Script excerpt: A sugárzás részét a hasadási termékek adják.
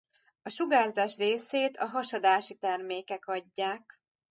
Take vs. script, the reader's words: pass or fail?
pass